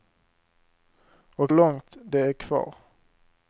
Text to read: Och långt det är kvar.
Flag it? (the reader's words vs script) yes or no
no